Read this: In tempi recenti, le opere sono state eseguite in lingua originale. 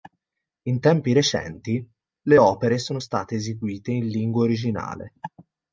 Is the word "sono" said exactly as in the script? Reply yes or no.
yes